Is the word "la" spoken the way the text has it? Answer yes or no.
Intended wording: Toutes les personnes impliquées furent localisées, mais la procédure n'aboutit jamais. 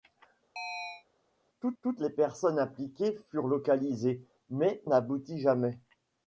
no